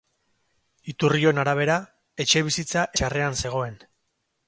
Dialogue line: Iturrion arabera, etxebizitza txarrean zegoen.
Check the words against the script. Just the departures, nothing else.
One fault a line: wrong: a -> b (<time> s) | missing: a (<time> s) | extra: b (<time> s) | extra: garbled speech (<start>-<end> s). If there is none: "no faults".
no faults